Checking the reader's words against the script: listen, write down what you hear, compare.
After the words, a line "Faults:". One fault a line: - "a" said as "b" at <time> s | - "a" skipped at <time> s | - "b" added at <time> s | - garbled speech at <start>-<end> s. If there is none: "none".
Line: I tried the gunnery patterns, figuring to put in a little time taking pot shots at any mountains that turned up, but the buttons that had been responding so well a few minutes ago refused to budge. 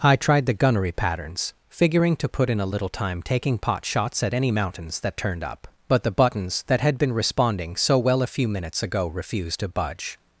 I tried the gunnery patterns, figuring to put in a little time taking pot shots at any mountains that turned up, but the buttons that had been responding so well a few minutes ago refused to budge.
Faults:
none